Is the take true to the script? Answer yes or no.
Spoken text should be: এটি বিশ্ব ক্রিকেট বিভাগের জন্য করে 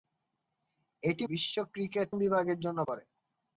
yes